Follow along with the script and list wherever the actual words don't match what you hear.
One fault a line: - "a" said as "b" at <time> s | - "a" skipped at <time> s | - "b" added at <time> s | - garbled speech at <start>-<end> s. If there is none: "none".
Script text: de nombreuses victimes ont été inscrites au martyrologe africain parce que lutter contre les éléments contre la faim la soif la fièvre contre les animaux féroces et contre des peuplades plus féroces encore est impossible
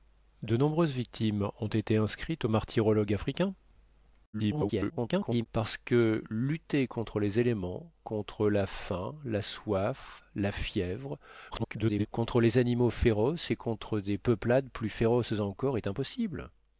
- garbled speech at 4.3-5.5 s
- garbled speech at 11.5-12.1 s